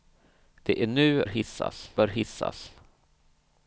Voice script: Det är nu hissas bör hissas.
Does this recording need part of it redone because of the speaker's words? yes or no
no